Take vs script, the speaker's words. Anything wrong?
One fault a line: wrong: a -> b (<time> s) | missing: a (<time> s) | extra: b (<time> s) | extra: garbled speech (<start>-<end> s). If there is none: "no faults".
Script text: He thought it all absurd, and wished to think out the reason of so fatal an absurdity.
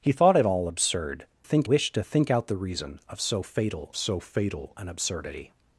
wrong: and -> think (1.4 s)
extra: so fatal (4.0 s)